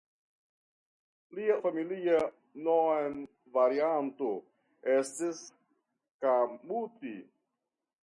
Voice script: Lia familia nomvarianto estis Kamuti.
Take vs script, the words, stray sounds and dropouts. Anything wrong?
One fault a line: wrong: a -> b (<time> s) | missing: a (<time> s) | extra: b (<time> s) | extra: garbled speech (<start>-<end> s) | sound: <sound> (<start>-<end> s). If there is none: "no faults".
no faults